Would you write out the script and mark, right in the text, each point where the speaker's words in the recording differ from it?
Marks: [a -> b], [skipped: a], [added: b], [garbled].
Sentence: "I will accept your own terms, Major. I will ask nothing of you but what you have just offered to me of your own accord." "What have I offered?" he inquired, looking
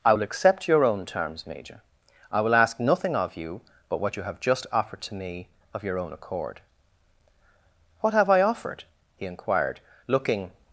"I will accept your own terms, Major. I will ask nothing of you but what you have just offered to me of your own accord." "What have I offered?" he inquired, looking